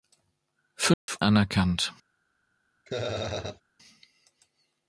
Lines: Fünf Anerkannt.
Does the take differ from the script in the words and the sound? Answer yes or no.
yes